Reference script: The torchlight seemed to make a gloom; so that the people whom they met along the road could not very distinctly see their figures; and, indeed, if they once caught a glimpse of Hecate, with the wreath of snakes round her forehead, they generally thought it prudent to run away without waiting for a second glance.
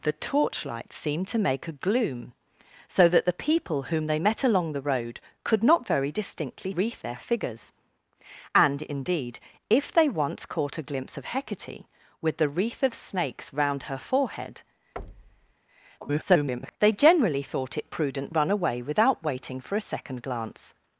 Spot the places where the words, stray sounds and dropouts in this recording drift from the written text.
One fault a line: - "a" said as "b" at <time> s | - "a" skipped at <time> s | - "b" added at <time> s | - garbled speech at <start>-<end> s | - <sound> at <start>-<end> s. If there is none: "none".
- "see" said as "wreath" at 6.7 s
- thud at 15.0-15.5 s
- garbled speech at 16.0-16.8 s
- "to" skipped at 18.3 s